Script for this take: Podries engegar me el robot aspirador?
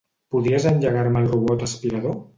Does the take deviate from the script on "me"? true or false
false